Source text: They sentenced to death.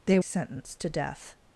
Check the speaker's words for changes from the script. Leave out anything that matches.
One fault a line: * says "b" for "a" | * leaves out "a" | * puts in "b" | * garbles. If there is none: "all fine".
all fine